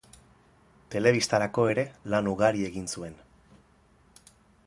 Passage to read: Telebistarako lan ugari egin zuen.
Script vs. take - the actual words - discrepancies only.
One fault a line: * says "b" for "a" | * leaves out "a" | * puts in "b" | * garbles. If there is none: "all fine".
* puts in "ere"